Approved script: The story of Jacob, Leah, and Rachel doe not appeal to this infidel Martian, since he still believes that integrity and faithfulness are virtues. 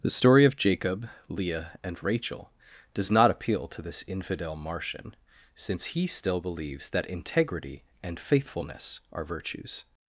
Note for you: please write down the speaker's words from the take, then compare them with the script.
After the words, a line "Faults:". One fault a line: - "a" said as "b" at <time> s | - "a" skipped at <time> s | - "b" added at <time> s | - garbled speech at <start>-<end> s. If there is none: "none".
The story of Jacob, Leah, and Rachel does not appeal to this infidel Martian, since he still believes that integrity and faithfulness are virtues.
Faults:
- "doe" said as "does" at 2.9 s